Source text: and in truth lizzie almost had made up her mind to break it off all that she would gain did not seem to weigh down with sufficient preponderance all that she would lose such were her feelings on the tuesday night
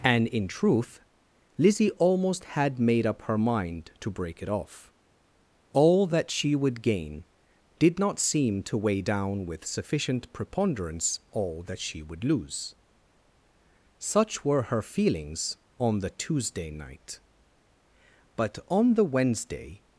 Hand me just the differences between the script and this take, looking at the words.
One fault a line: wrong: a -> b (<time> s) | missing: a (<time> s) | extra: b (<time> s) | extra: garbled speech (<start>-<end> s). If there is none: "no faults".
extra: but on the wednesday (18.4 s)